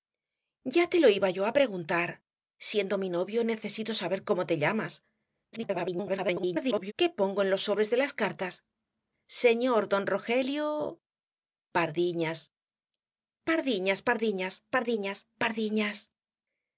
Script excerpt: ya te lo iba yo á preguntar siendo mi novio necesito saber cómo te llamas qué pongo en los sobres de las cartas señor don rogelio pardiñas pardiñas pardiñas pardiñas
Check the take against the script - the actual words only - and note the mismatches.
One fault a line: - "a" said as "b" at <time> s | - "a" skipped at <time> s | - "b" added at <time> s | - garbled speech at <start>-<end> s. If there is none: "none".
- garbled speech at 5.5-6.9 s
- "pardiñas" added at 15.4 s